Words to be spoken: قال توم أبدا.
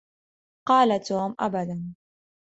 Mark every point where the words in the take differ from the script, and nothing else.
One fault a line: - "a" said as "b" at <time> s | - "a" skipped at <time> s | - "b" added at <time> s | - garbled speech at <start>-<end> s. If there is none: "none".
none